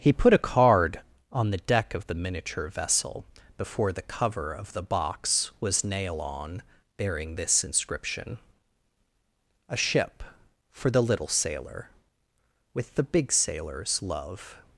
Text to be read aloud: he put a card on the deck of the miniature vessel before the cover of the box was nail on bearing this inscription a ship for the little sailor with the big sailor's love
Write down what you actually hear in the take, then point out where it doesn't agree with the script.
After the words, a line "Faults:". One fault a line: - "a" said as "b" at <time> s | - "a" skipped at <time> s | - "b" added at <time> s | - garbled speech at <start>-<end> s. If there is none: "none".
he put a card on the deck of the miniature vessel before the cover of the box was nail on bearing this inscription a ship for the little sailor with the big sailor's love
Faults:
none